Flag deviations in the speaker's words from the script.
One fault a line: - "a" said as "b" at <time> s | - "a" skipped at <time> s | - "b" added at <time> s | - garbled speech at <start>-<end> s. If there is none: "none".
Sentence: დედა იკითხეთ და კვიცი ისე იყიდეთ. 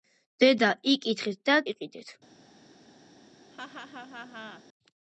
- "კვიცი ისე" skipped at 1.6 s